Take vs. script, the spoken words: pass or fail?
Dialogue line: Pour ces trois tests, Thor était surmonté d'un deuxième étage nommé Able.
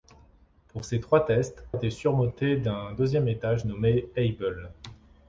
fail